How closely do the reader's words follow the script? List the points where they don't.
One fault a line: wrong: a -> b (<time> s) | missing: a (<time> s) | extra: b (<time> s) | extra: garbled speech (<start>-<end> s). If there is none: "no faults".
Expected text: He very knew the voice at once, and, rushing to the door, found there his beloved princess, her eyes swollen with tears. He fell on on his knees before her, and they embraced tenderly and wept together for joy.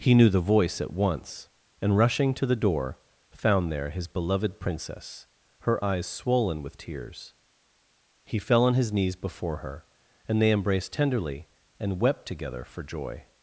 missing: very (0.1 s)
missing: on (8.7 s)